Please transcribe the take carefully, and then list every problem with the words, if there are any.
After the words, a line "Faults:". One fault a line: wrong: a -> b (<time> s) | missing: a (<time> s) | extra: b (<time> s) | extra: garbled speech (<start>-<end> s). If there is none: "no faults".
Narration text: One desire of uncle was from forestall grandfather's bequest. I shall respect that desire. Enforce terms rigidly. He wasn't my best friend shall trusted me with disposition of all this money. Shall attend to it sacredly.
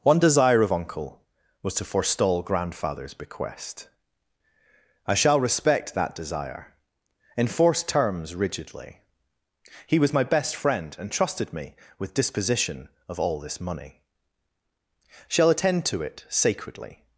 One desire of uncle was to forestall grandfather's bequest. I shall respect that desire. Enforce terms rigidly. He was my best friend and trusted me with disposition of all this money. Shall attend to it sacredly.
Faults:
wrong: from -> to (1.8 s)
wrong: wasn't -> was (10.0 s)
wrong: shall -> and (11.0 s)